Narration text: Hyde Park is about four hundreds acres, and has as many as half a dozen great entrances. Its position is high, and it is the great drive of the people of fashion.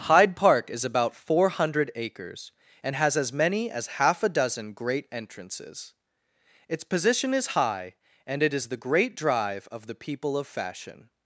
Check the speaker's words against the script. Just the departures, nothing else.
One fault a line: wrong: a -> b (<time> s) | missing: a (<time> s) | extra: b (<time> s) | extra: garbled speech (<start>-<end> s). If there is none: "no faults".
wrong: hundreds -> hundred (1.5 s)